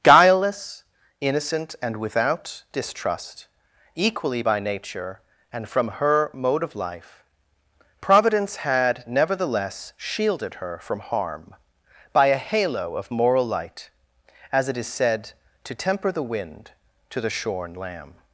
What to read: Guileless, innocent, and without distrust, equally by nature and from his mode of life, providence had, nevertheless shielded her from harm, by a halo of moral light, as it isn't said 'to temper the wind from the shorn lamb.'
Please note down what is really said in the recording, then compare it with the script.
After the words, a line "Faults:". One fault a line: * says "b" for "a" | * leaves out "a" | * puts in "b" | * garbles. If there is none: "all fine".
Guileless, innocent, and without distrust, equally by nature and from her mode of life, providence had, nevertheless shielded her from harm, by a halo of moral light, as it is said 'to temper the wind to the shorn lamb.'
Faults:
* says "her" for "his"
* says "is" for "isn't"
* says "to" for "from"